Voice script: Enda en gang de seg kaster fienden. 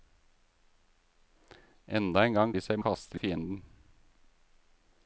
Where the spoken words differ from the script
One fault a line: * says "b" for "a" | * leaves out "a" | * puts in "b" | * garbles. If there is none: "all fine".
all fine